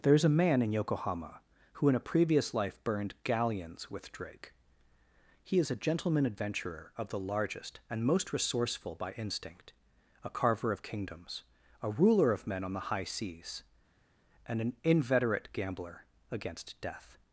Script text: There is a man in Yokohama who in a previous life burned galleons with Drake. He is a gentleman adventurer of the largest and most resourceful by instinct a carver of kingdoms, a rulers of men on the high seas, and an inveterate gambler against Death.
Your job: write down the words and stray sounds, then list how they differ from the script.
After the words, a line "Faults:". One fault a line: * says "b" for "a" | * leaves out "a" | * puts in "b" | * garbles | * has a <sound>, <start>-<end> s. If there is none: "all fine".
There is a man in Yokohama who in a previous life burned galleons with Drake. He is a gentleman adventurer of the largest and most resourceful by instinct a carver of kingdoms, a ruler of men on the high seas, and an inveterate gambler against Death.
Faults:
* says "ruler" for "rulers"